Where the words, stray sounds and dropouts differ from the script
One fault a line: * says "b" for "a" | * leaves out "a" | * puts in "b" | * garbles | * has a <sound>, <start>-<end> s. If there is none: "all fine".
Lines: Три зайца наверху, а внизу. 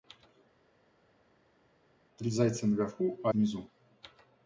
all fine